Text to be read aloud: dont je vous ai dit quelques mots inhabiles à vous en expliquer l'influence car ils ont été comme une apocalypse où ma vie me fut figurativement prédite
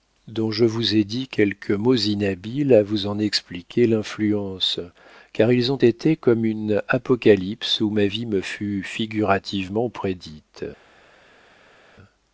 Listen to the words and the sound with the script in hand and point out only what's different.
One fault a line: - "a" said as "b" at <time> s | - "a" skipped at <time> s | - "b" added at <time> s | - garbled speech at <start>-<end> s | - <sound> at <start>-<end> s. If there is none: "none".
none